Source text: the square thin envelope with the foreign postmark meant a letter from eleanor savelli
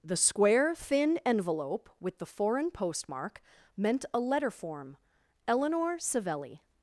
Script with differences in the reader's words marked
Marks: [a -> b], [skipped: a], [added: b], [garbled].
the square thin envelope with the foreign postmark meant a letter [from -> form] eleanor savelli